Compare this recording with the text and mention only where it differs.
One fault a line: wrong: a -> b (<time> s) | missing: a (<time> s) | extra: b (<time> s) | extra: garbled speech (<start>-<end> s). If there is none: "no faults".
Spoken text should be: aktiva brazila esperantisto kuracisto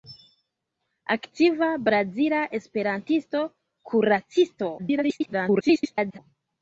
extra: garbled speech (4.8-6.2 s)